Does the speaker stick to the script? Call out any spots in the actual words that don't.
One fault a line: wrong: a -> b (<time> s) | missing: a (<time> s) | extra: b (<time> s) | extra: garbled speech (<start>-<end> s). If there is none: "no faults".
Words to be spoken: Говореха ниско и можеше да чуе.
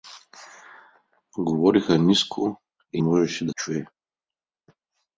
no faults